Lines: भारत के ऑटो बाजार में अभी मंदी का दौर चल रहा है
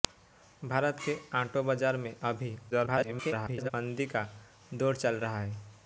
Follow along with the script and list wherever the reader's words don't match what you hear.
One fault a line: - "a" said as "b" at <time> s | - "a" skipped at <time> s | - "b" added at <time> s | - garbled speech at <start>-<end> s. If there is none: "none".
- garbled speech at 2.7-3.7 s